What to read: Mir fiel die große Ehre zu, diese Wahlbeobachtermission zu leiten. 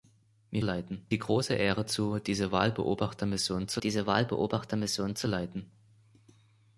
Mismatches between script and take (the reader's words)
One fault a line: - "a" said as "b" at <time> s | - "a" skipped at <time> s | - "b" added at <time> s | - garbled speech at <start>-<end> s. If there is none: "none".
- "fiel" said as "leiten" at 0.6 s
- "diese Wahlbeobachtermission zu" added at 3.8 s